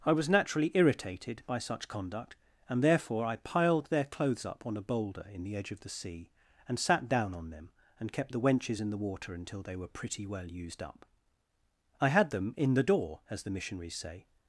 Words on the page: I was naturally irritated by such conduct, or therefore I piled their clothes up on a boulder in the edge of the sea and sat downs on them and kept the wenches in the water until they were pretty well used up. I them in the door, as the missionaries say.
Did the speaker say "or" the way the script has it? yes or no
no